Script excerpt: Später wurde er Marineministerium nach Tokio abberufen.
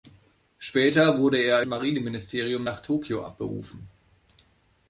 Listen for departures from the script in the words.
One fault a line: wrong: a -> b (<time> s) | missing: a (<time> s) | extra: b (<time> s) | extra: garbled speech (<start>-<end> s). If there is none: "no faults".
no faults